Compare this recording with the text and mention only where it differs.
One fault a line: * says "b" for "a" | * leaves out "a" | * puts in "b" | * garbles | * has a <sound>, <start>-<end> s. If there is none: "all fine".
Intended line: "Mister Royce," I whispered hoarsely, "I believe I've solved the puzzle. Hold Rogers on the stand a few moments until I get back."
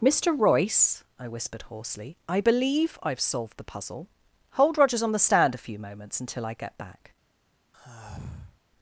* has a sigh, 7.7-8.6 s